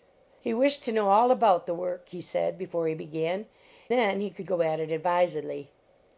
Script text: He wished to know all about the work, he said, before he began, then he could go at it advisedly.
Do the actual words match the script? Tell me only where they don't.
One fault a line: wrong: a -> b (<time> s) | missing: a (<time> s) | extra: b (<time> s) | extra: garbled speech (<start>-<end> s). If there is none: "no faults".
no faults